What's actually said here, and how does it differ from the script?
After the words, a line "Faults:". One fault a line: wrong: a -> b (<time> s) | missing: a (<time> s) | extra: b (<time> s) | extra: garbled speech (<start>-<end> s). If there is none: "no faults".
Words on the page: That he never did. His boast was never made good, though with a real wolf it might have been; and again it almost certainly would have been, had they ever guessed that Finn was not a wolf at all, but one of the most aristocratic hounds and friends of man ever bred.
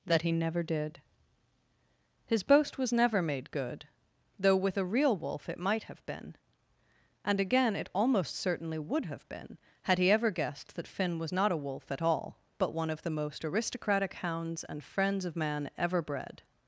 That he never did. His boast was never made good, though with a real wolf it might have been; and again it almost certainly would have been, had he ever guessed that Finn was not a wolf at all, but one of the most aristocratic hounds and friends of man ever bred.
Faults:
wrong: they -> he (10.0 s)